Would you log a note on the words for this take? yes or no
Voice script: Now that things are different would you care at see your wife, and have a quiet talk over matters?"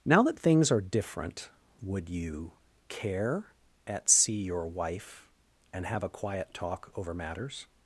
no